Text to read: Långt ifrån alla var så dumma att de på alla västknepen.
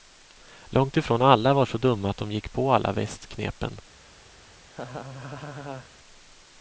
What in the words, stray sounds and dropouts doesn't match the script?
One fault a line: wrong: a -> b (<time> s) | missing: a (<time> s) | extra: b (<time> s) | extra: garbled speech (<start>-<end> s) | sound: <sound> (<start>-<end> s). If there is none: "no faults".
extra: gick (2.3 s)
sound: laugh (4.6-5.9 s)